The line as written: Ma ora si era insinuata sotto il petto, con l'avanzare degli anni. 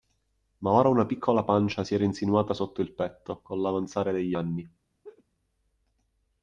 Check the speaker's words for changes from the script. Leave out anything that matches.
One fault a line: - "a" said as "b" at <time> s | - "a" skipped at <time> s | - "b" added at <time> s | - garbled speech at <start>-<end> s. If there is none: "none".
- "una piccola pancia" added at 0.9 s